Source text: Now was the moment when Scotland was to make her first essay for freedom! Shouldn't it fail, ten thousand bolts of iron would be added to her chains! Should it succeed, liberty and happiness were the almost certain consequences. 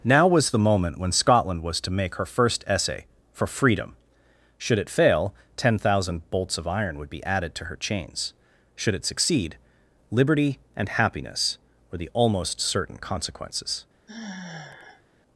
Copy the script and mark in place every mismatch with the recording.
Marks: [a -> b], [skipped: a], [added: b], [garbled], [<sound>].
Now was the moment when Scotland was to make her first essay for freedom! [Shouldn't -> Should] it fail, ten thousand bolts of iron would be added to her chains! Should it succeed, liberty and happiness were the almost certain consequences. [sigh]